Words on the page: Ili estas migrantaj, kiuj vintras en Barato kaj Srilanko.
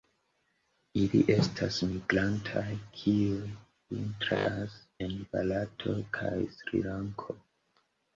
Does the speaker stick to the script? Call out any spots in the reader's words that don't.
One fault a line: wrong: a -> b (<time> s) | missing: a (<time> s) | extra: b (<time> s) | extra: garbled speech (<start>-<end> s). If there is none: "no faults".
no faults